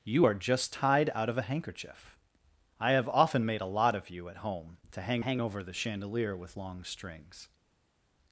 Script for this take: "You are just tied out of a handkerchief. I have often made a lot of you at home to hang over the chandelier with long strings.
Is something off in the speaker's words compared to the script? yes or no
yes